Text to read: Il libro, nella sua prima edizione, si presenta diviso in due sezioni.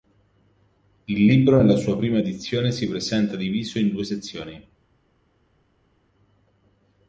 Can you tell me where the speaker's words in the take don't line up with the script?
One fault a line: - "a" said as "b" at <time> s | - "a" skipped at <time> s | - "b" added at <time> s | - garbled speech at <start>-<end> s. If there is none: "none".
none